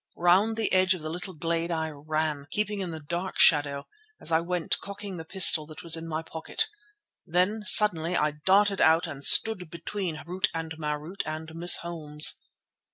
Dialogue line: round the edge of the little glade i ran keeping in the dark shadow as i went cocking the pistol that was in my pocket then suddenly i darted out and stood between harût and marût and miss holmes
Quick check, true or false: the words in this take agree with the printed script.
true